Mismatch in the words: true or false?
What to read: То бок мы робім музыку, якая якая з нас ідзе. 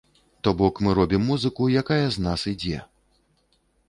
true